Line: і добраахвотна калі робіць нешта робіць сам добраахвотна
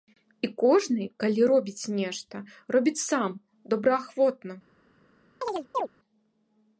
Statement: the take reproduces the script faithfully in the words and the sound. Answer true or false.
false